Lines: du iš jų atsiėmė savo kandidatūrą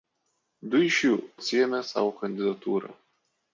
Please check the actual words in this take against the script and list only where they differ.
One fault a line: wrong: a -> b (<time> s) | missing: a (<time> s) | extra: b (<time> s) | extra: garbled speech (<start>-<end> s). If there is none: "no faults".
no faults